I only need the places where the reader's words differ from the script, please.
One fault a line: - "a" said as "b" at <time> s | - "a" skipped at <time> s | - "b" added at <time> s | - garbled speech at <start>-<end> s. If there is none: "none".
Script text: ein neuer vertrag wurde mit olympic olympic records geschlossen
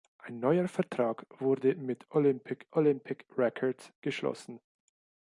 none